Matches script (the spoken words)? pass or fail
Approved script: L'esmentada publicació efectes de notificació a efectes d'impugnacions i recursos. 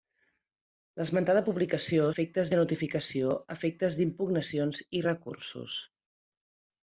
pass